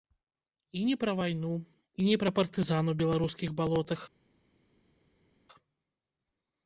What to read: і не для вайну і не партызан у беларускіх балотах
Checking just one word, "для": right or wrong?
wrong